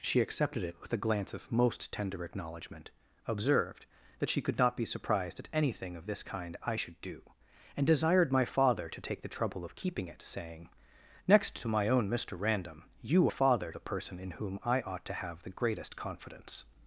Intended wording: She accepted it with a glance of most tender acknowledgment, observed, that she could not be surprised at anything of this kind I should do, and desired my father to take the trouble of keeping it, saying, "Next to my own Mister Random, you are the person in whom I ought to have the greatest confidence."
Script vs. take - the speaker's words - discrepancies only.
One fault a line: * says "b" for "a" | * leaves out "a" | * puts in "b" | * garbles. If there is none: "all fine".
* says "father" for "are"